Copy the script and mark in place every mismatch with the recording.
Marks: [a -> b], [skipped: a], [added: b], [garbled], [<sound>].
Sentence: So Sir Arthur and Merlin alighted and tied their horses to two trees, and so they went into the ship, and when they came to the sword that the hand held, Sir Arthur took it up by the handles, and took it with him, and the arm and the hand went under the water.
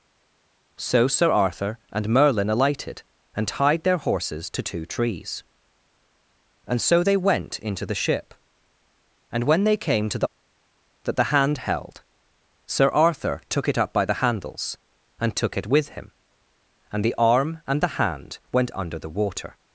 So Sir Arthur and Merlin alighted and tied their horses to two trees, and so they went into the ship, and when they came to the [skipped: sword] that the hand held, Sir Arthur took it up by the handles, and took it with him, and the arm and the hand went under the water.